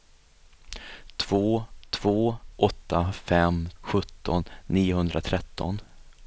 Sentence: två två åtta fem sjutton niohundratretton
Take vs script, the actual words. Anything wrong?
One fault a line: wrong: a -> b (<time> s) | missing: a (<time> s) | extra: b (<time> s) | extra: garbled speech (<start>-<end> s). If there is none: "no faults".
no faults